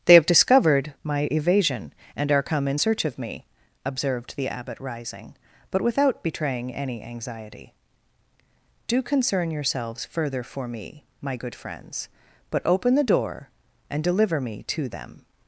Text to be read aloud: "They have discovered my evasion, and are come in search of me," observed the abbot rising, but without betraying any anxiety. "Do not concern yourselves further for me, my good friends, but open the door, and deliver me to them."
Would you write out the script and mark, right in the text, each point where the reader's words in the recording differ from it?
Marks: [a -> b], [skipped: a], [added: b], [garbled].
"They have discovered my evasion, and are come in search of me," observed the abbot rising, but without betraying any anxiety. "Do [skipped: not] concern yourselves further for me, my good friends, but open the door, and deliver me to them."